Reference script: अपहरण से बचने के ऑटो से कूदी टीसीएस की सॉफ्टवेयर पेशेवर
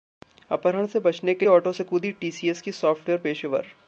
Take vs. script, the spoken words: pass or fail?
pass